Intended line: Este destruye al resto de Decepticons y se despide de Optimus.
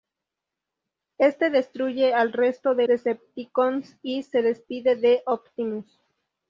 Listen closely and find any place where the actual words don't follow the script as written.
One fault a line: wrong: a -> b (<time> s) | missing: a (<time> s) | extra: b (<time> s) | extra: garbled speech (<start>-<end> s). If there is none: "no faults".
no faults